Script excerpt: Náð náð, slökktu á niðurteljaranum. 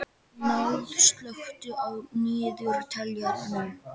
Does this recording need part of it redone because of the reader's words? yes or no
yes